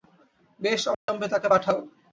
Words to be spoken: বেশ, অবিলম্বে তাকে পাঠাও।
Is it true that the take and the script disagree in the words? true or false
false